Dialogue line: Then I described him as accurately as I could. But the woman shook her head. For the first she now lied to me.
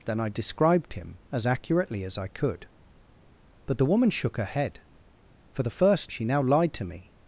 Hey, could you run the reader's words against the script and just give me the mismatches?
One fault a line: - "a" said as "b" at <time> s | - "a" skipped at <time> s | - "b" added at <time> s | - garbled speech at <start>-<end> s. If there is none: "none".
none